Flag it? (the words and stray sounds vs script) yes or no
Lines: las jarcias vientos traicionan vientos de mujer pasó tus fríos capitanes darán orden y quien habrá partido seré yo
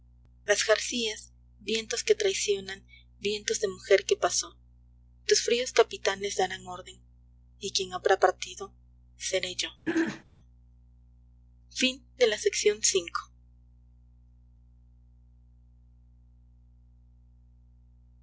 yes